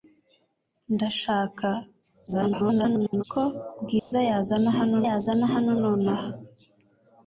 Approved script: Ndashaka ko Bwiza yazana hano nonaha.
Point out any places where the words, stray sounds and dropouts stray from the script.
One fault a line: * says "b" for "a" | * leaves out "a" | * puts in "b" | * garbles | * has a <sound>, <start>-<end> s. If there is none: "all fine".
* garbles
* has a dropout, 4.0-4.1 s
* puts in "yazana hano"